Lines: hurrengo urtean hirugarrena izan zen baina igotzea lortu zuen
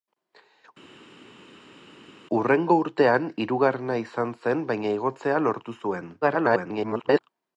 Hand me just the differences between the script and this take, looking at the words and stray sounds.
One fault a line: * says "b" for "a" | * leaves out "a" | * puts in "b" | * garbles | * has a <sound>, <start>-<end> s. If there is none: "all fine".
* garbles